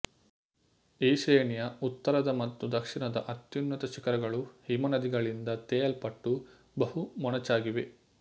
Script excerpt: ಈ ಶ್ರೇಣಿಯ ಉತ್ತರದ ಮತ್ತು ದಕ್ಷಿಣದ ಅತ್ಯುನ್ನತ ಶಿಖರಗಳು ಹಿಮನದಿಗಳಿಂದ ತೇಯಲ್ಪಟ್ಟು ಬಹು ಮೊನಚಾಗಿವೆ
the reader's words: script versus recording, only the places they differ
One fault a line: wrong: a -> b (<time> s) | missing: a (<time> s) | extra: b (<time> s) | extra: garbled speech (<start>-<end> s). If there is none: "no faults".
no faults